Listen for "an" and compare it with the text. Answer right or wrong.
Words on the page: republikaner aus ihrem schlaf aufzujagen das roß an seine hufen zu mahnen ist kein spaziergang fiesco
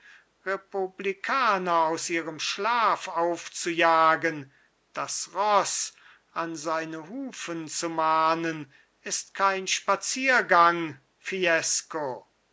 right